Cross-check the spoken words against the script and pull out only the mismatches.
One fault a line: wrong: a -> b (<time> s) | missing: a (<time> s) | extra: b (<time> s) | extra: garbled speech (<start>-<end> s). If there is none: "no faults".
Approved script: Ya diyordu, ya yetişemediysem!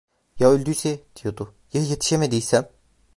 extra: öldüyse (0.5 s)